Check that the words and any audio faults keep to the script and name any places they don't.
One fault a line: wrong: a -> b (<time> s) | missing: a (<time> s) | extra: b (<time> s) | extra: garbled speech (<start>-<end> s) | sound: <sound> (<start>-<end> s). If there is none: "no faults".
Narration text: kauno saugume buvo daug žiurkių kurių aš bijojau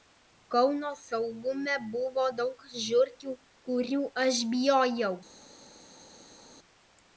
no faults